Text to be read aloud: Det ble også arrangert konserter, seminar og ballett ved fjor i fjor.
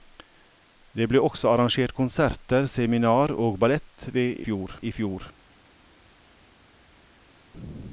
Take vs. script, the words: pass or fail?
pass